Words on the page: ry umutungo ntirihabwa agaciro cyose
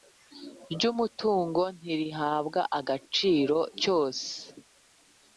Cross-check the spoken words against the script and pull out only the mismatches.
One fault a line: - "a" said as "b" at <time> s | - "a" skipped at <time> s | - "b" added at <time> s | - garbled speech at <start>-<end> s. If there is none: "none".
none